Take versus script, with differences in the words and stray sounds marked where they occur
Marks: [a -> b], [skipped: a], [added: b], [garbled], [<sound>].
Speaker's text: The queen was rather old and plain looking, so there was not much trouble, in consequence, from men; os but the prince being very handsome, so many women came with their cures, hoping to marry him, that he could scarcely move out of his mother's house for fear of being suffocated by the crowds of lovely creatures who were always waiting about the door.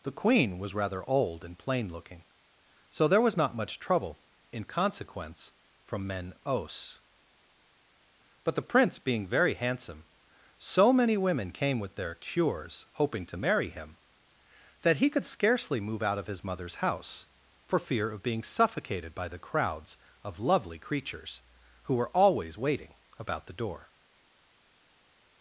The queen was rather old and plain looking, so there was not much trouble, in consequence, from men; os but the prince being very handsome, so many women came with their cures, hoping to marry him, that he could scarcely move out of his mother's house for fear of being suffocated by the crowds of lovely creatures who were always waiting about the door.